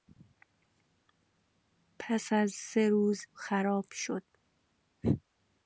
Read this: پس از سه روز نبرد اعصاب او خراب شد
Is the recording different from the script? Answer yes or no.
yes